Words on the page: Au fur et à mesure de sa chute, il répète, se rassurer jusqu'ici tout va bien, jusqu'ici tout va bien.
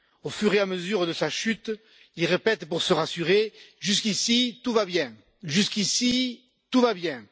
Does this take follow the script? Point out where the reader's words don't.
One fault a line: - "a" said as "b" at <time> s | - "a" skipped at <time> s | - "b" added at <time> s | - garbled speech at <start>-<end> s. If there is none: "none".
- "pour" added at 2.7 s